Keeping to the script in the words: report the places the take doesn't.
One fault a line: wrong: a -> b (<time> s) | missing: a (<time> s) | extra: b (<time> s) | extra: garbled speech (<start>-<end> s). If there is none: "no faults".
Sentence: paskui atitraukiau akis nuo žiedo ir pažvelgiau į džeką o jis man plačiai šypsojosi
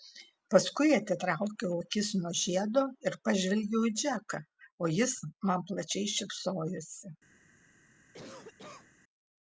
no faults